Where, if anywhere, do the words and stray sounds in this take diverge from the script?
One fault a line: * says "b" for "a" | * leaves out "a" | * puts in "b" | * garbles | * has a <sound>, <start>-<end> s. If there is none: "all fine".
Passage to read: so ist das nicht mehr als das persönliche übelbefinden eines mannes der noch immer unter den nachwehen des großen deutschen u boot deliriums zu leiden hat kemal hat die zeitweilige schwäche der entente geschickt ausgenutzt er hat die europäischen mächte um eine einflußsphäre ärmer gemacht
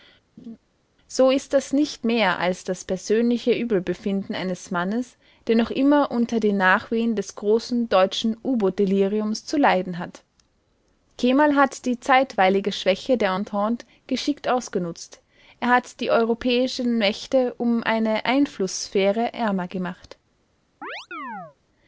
* has a laugh, 0.4-0.6 s
* has a chirp, 20.8-21.6 s